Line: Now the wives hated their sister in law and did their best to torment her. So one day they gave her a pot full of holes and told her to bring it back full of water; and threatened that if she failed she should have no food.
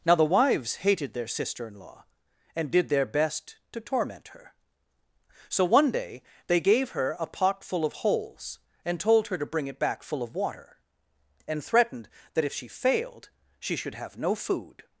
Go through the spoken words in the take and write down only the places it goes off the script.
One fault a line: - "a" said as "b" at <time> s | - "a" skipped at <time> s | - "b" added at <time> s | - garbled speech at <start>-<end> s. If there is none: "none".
none